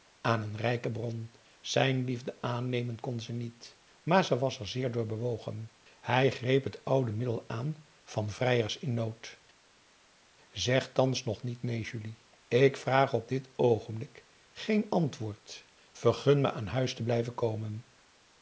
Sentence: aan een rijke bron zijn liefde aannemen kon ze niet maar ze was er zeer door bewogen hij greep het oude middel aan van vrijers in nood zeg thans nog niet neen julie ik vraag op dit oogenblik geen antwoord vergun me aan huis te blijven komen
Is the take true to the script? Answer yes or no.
yes